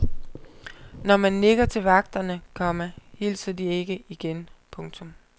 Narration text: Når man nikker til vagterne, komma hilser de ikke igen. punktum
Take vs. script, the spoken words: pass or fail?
pass